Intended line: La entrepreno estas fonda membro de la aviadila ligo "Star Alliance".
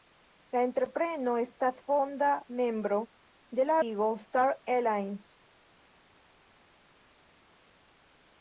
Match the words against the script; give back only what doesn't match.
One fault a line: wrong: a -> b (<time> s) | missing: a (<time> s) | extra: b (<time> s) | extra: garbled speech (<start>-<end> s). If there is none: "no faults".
missing: aviadila (3.8 s)